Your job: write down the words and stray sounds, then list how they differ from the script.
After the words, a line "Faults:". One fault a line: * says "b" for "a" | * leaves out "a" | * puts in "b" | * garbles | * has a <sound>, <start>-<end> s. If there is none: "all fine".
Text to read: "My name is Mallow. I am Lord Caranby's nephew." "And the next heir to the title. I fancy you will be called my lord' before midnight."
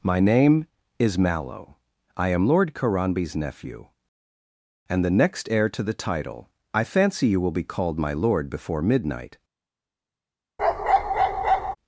"My name is Mallow. I am Lord Caranby's nephew." "And the next heir to the title. I fancy you will be called my lord' before midnight."
Faults:
* has a bark, 10.6-11.8 s